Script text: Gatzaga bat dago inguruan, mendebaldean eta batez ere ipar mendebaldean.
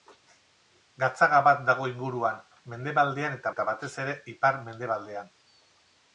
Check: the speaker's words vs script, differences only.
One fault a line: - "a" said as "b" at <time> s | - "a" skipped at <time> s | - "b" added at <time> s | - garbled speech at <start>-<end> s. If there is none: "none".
- "eta" added at 3.5 s